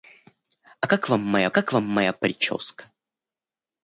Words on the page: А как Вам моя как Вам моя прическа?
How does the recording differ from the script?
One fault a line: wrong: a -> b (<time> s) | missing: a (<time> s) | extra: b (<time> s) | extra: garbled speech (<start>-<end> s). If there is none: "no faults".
no faults